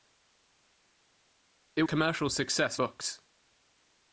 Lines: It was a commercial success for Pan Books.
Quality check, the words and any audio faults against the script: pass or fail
fail